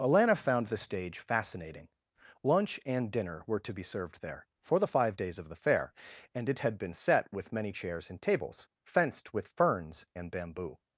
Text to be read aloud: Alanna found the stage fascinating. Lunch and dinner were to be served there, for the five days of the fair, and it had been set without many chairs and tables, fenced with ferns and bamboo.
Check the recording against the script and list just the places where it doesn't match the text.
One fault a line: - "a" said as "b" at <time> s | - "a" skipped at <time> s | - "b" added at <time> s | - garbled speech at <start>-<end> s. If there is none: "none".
- "without" said as "with" at 7.3 s